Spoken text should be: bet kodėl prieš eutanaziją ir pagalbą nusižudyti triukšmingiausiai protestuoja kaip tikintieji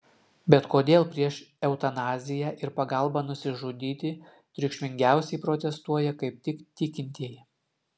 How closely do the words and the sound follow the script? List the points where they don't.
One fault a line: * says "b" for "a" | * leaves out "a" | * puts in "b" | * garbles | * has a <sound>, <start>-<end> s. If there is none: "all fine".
* puts in "tik"